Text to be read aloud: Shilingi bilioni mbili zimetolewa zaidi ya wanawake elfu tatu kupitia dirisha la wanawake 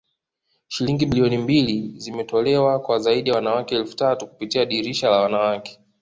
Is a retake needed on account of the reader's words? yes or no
yes